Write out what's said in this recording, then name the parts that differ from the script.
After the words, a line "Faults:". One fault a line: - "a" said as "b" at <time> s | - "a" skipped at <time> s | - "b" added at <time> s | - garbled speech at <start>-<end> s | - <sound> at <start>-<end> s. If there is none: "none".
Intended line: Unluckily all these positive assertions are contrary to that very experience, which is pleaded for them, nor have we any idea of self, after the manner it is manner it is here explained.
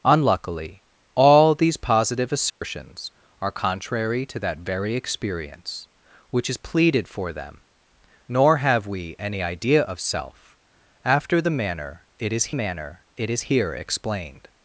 Unluckily all these positive assertions are contrary to that very experience, which is pleaded for them, nor have we any idea of self, after the manner it is manner it is here explained.
Faults:
- dropout at 2.5-2.6 s